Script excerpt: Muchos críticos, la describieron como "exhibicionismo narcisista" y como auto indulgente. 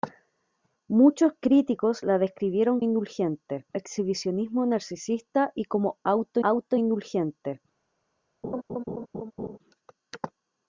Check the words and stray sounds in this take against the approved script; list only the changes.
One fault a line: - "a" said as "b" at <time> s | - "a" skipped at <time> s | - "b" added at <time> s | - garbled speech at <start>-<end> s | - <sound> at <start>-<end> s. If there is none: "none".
- "como" said as "indulgente" at 2.8 s
- "auto" added at 6.4 s
- laugh at 8.4-9.6 s